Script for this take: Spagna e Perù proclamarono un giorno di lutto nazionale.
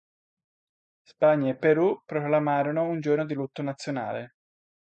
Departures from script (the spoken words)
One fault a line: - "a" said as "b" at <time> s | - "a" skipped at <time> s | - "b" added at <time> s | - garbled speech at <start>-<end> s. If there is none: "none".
none